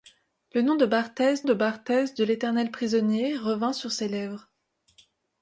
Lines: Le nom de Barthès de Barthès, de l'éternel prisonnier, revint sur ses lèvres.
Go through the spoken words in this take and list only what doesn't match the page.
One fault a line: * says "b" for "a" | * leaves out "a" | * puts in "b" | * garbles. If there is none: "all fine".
all fine